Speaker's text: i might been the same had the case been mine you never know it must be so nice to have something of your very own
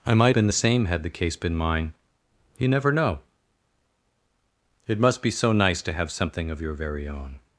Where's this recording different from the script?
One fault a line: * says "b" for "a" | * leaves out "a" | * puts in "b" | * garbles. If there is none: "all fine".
all fine